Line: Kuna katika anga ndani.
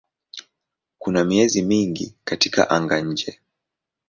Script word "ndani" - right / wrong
wrong